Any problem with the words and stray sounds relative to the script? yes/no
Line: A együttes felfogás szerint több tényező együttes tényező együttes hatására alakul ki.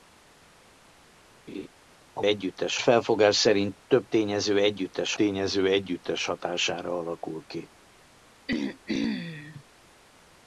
yes